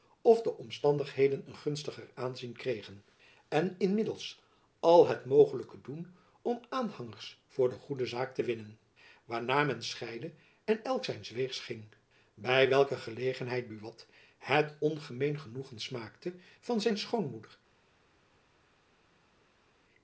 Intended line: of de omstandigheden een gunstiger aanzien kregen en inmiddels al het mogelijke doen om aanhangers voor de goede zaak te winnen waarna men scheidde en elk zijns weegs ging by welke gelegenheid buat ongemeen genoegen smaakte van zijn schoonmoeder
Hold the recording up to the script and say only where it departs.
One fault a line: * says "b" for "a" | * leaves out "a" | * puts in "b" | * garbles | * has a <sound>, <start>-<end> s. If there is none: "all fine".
* puts in "het"